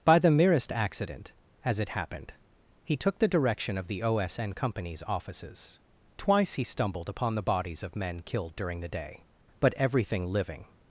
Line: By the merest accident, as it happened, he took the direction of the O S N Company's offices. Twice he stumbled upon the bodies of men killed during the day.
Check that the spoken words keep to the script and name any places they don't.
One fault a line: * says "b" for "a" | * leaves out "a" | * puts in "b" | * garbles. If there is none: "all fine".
* puts in "But everything living"